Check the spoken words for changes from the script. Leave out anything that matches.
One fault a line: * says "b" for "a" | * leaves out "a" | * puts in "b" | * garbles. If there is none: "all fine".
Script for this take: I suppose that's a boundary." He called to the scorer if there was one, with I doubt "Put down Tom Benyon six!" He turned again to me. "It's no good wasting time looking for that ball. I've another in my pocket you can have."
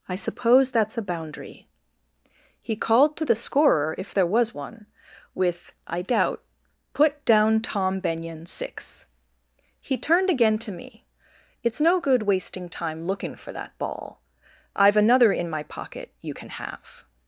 all fine